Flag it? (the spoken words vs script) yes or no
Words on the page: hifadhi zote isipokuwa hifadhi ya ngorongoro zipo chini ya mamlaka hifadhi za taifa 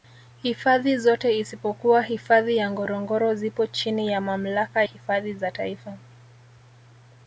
no